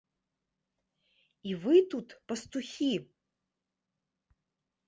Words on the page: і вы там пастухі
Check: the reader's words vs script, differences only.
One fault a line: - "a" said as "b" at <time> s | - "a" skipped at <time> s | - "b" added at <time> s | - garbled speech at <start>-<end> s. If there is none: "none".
- "там" said as "тут" at 1.9 s